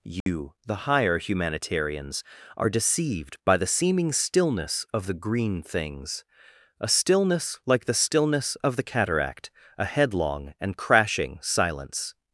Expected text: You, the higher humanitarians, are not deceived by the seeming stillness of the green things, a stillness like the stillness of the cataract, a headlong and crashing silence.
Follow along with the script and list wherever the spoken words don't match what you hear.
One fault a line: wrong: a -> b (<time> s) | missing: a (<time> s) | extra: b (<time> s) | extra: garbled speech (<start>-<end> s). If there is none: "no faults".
missing: not (2.7 s)